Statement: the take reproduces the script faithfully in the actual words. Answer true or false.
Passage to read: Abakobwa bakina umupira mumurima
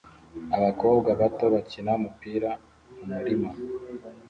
false